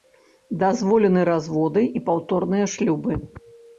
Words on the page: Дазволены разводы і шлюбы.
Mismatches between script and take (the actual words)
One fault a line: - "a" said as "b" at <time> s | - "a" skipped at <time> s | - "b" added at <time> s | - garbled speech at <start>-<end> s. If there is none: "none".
- "паўторныя" added at 2.1 s